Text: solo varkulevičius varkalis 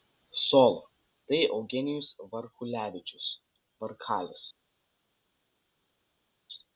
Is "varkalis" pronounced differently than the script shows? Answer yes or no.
no